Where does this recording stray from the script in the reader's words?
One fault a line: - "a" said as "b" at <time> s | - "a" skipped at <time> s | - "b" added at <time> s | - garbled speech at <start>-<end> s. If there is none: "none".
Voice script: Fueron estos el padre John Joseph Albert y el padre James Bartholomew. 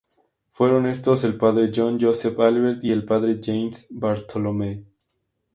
none